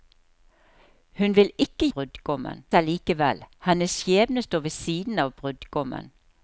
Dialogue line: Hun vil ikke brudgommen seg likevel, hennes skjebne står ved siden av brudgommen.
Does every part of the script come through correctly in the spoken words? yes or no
yes